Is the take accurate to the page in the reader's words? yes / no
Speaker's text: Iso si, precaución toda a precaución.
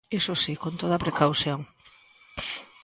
no